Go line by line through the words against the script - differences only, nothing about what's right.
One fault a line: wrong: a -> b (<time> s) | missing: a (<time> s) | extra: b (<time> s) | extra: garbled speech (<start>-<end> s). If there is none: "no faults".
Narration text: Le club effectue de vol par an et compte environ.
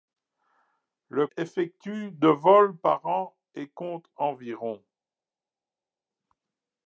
missing: club (1.3 s)